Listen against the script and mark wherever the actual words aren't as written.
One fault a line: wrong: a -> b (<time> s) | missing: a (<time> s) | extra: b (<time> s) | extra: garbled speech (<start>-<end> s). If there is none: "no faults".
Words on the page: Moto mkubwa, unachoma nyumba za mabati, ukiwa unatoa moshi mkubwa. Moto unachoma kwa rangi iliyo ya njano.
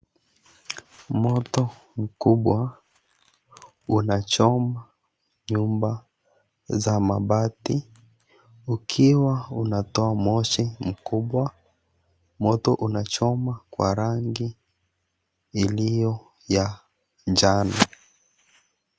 no faults